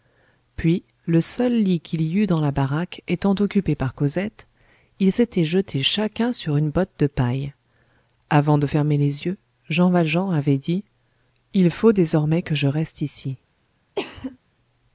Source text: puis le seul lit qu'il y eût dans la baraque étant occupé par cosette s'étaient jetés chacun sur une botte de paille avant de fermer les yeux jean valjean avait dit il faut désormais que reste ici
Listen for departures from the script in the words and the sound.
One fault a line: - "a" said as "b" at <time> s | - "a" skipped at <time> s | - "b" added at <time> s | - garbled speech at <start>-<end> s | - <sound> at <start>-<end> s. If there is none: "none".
- "ils" added at 5.0 s
- "je" added at 12.5 s
- cough at 13.9-14.4 s